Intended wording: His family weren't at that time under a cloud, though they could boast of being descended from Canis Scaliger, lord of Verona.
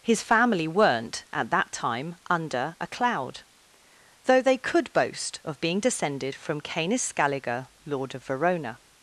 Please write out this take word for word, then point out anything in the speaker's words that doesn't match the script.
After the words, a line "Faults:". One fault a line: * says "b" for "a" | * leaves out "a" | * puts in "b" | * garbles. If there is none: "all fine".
His family weren't at that time under a cloud, though they could boast of being descended from Canis Scaliger, lord of Verona.
Faults:
all fine